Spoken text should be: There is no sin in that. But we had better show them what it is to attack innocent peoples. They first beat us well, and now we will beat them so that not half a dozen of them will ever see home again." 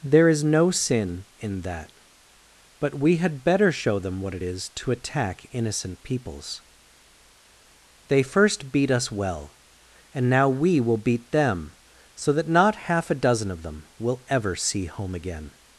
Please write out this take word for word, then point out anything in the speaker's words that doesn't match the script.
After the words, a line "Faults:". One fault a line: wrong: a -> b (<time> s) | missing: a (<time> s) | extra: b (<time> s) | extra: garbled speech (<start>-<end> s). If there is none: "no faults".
There is no sin in that. But we had better show them what it is to attack innocent peoples. They first beat us well, and now we will beat them so that not half a dozen of them will ever see home again."
Faults:
no faults